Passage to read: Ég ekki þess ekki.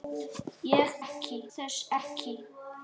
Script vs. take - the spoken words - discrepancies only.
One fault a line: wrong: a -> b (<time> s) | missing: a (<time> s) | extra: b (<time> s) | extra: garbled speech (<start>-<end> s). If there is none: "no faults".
no faults